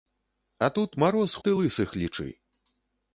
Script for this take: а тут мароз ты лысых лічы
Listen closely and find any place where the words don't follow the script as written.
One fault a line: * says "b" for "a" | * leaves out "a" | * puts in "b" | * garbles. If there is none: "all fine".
all fine